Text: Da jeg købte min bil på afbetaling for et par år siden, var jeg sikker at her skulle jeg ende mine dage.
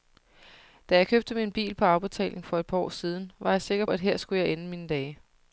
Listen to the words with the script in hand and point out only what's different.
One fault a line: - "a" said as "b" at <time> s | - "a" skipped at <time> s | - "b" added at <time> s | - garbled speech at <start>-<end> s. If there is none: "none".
none